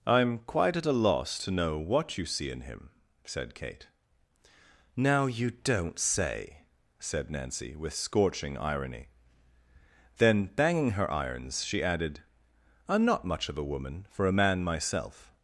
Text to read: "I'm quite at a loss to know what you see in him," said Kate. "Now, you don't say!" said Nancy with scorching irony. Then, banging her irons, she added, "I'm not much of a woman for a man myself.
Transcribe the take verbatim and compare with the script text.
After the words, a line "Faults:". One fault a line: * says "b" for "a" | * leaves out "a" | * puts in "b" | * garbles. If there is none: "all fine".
"I'm quite at a loss to know what you see in him," said Kate. "Now, you don't say!" said Nancy with scorching irony. Then, banging her irons, she added, "I'm not much of a woman for a man myself.
Faults:
all fine